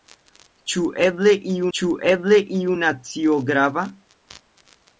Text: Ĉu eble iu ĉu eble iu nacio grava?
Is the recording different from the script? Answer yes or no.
no